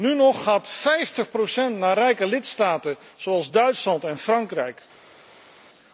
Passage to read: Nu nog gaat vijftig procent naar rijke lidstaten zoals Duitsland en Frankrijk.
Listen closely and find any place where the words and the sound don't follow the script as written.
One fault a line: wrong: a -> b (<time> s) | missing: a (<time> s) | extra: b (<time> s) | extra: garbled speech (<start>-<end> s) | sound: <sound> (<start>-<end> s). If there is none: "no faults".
no faults